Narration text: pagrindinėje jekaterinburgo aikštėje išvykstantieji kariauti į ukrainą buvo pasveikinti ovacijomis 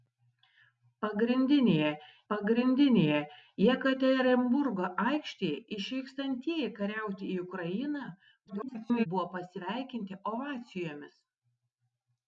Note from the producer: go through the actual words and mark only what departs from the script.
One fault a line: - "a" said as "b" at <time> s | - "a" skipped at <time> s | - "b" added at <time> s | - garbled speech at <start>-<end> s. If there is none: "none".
- "pagrindinėje" added at 2.3 s
- garbled speech at 8.5-9.1 s